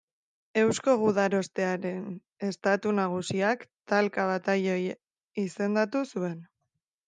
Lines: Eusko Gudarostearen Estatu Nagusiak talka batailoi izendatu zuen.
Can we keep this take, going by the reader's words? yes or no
yes